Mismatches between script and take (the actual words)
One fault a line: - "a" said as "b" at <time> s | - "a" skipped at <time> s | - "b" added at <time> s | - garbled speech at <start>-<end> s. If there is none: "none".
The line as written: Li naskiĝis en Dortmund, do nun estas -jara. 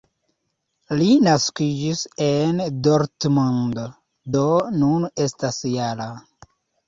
none